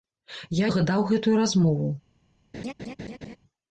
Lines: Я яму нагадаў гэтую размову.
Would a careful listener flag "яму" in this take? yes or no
yes